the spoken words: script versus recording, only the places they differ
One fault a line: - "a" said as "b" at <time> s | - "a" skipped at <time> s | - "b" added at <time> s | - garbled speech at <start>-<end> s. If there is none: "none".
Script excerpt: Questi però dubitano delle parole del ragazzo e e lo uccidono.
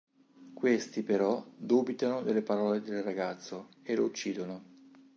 - "e" skipped at 4.0 s